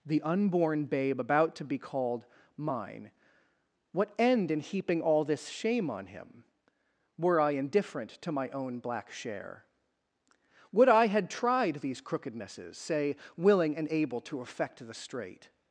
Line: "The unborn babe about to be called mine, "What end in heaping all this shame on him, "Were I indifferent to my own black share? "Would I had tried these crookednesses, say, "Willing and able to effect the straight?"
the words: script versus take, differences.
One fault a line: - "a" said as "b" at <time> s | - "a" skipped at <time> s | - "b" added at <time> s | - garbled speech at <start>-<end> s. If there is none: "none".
none